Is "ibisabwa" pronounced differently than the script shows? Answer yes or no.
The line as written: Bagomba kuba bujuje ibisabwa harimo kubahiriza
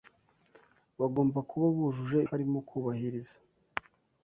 yes